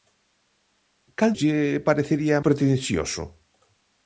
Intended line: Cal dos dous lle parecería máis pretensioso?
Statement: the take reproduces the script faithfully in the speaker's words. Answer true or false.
false